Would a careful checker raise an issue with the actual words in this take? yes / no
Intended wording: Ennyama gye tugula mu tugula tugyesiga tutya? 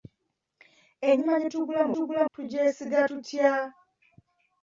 no